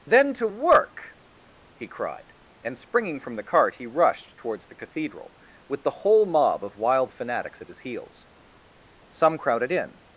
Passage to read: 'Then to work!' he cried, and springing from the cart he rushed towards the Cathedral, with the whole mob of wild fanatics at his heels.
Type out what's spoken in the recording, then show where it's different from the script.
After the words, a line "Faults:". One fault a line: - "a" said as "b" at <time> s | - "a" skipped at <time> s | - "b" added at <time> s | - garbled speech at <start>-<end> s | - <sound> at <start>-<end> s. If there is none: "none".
'Then to work!' he cried, and springing from the cart he rushed towards the Cathedral, with the whole mob of wild fanatics at his heels. Some crowded in
Faults:
- "Some crowded in" added at 9.1 s